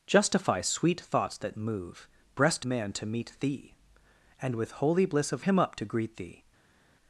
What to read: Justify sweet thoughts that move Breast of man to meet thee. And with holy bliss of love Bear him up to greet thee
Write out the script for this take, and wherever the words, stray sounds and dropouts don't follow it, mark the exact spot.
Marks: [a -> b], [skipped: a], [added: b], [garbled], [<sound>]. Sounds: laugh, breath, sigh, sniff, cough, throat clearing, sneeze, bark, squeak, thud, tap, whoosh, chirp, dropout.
Justify sweet thoughts that move Breast [skipped: of] man to meet thee. And with holy bliss of [skipped: love Bear] him up to greet thee